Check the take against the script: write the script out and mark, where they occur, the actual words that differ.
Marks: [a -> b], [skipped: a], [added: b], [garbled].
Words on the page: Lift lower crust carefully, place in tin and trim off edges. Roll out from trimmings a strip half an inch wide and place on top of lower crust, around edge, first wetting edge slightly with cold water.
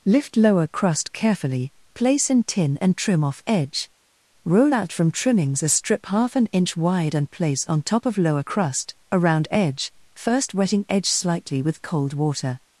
Lift lower crust carefully, place in tin and trim off [edges. -> edge] Roll out from trimmings a strip half an inch wide and place on top of lower crust, around edge, first wetting edge slightly with cold water.